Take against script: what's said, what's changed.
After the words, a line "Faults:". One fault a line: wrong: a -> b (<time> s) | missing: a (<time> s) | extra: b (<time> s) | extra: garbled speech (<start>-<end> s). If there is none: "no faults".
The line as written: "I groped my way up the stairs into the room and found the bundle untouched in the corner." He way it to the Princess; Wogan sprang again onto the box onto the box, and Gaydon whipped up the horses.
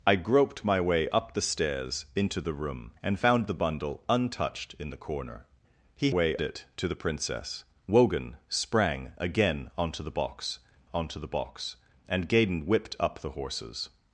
"I groped my way up the stairs into the room and found the bundle untouched in the corner." He way it to the Princess; Wogan sprang again onto the box onto the box, and Gaydon whipped up the horses.
Faults:
no faults